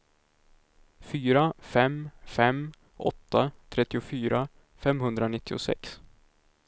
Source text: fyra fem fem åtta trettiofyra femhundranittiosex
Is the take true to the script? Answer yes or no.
yes